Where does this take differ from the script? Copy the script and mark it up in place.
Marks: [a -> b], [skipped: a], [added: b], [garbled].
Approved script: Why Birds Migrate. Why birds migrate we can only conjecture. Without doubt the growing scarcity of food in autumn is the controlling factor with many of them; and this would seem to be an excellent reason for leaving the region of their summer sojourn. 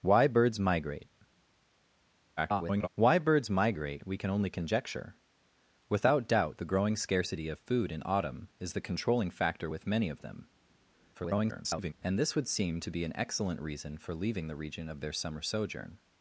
Why Birds Migrate. [garbled] Why birds migrate we can only conjecture. Without doubt the growing scarcity of food in autumn is the controlling factor with many of them; [garbled] and this would seem to be an excellent reason for leaving the region of their summer sojourn.